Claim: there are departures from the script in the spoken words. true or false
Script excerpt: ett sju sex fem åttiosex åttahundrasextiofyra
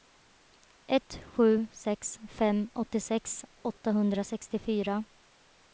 false